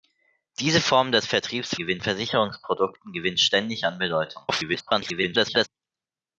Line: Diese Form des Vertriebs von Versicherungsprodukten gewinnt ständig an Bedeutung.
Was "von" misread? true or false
true